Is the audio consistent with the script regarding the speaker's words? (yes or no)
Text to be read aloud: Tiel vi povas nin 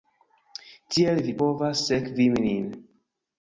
no